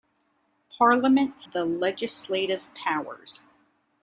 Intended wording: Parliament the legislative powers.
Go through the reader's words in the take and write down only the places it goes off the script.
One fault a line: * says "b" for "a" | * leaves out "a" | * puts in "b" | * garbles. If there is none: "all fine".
all fine